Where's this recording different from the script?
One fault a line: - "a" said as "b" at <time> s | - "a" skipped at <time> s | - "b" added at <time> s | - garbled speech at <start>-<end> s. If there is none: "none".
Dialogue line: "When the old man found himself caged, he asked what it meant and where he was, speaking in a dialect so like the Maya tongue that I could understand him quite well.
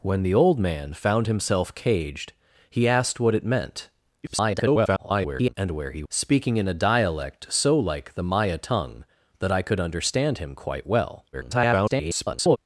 - garbled speech at 4.2-5.5 s
- "was" skipped at 6.0 s
- garbled speech at 11.3-12.6 s